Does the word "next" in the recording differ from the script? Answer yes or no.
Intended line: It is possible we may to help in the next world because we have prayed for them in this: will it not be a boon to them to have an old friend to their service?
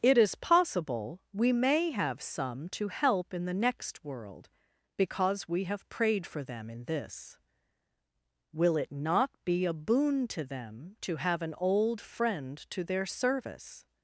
no